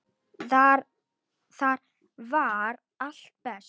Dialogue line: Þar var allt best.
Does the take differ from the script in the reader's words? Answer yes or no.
no